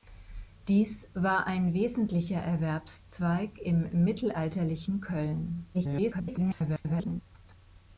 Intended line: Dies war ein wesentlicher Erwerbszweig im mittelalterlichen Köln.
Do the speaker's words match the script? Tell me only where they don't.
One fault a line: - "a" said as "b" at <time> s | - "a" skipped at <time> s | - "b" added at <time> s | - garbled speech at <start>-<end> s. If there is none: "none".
- garbled speech at 5.7-7.2 s